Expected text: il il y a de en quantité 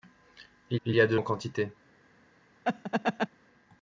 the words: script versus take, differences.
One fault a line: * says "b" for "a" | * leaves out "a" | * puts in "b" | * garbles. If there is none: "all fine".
all fine